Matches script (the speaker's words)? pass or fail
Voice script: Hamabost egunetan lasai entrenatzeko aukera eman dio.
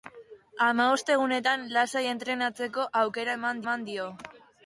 fail